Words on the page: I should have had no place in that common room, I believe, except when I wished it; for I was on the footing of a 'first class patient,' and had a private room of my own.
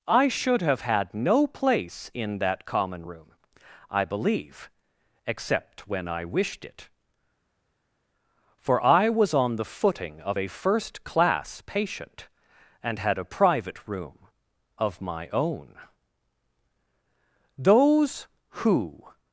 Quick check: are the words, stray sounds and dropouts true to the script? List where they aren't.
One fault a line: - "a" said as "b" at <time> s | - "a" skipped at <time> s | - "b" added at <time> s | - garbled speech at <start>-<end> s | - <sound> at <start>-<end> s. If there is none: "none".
- "Those who" added at 17.6 s